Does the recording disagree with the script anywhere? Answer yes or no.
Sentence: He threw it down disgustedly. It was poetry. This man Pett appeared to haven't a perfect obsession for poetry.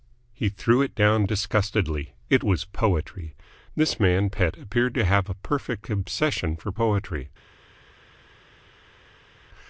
yes